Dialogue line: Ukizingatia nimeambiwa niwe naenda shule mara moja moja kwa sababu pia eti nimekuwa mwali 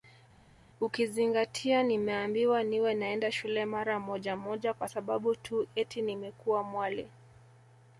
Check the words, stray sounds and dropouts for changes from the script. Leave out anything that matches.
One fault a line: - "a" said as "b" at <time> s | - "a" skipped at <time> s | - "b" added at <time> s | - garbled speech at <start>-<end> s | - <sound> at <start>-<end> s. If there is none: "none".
- "pia" said as "tu" at 5.4 s